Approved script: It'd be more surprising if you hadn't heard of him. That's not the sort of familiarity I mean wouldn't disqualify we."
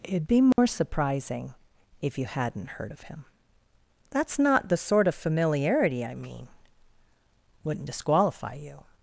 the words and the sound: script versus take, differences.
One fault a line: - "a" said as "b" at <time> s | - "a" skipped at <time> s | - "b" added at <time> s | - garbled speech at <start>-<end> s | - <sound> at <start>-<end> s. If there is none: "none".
- dropout at 0.5-0.6 s
- "we" said as "you" at 8.6 s